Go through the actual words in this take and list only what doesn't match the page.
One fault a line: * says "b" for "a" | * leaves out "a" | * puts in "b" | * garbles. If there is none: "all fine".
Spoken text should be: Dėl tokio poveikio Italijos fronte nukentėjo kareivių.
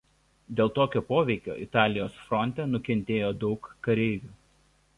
* puts in "daug"